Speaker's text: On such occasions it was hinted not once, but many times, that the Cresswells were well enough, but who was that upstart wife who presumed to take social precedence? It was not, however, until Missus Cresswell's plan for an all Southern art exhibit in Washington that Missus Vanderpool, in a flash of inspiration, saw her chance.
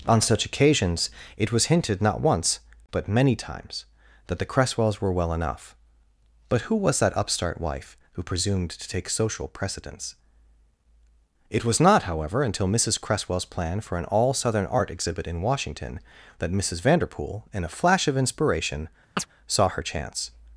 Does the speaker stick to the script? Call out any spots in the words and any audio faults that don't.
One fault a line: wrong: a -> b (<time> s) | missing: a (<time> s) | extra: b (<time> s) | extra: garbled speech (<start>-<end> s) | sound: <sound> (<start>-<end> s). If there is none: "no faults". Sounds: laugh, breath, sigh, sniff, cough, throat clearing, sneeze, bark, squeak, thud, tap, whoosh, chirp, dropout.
sound: chirp (19.2-19.3 s)